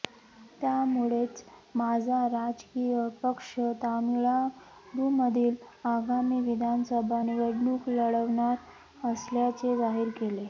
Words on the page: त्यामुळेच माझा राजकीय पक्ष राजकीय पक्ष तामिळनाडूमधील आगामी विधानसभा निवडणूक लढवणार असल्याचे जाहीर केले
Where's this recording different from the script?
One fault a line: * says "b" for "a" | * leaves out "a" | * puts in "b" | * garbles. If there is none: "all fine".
* leaves out "राजकीय पक्ष"